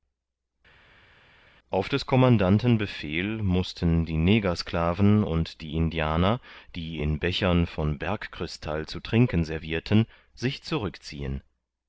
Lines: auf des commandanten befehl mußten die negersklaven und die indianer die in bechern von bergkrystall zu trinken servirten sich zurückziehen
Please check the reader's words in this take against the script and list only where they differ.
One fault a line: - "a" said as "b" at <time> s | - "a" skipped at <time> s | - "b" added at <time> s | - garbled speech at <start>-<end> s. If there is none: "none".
none